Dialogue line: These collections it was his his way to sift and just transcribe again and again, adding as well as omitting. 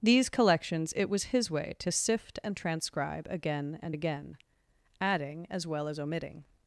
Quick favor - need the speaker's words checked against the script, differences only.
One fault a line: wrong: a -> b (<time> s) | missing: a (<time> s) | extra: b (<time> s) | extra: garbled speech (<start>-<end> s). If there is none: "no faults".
missing: his (1.5 s)
missing: just (2.6 s)